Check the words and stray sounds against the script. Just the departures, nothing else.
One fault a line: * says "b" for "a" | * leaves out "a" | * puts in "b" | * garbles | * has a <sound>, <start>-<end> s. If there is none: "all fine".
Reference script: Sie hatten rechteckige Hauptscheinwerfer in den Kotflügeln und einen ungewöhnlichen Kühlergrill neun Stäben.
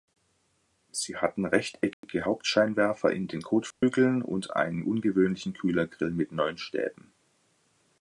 * has a dropout, 1.9-2.0 s
* has a dropout, 3.7-3.8 s
* puts in "mit"